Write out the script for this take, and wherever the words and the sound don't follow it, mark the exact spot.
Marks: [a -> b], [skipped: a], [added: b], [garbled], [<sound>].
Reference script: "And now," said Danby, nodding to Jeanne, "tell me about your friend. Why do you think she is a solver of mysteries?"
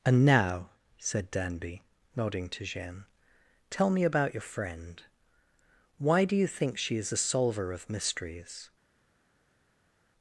"And now," said Danby, nodding to Jeanne, "tell me about your friend. Why do you think she is a solver of mysteries?"